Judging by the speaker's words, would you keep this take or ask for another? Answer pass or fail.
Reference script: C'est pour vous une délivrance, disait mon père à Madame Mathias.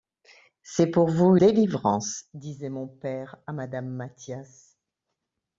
fail